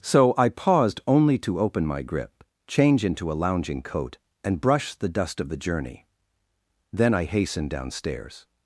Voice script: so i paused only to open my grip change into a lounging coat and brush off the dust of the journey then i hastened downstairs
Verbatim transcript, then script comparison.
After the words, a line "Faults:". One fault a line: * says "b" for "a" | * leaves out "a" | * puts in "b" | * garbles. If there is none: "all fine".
so i paused only to open my grip change into a lounging coat and brush the dust of the journey then i hastened downstairs
Faults:
* leaves out "off"